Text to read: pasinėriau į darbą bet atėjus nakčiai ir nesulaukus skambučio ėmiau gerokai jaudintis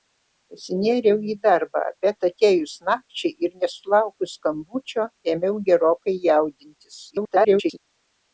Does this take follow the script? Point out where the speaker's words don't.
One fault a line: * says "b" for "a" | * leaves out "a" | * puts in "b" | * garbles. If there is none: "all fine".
* garbles